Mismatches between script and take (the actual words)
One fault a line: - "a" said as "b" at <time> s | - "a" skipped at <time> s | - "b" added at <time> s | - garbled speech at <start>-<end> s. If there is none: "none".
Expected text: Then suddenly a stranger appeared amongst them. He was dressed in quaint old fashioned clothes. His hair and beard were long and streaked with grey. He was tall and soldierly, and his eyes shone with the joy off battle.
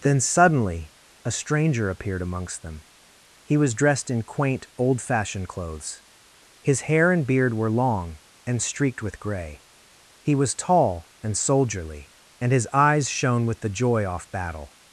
none